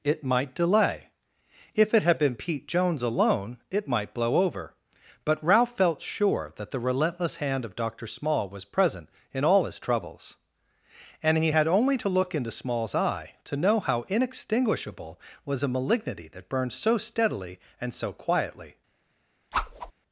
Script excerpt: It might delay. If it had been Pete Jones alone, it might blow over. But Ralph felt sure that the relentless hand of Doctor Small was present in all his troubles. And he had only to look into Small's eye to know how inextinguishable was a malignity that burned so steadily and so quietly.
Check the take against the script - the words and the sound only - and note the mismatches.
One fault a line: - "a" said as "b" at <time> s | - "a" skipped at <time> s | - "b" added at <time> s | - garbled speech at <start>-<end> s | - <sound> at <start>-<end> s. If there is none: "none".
- whoosh at 19.5-19.9 s